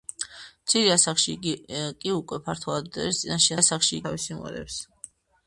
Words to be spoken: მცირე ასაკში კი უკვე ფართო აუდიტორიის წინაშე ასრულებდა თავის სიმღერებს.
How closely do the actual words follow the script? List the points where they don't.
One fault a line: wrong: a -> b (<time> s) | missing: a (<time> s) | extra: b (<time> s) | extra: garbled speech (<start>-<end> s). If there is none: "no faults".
wrong: ასრულებდა -> ასაკში (3.6 s)